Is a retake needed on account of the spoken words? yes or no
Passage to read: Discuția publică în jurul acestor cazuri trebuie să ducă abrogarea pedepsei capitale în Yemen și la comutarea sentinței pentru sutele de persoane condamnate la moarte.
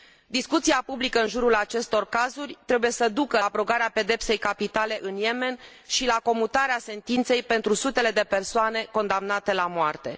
no